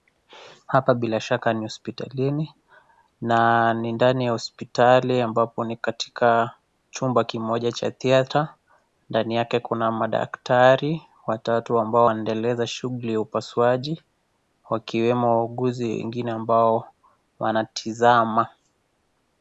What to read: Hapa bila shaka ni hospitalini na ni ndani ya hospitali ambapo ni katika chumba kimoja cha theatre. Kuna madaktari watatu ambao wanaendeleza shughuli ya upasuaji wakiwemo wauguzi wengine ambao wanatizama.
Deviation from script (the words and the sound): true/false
true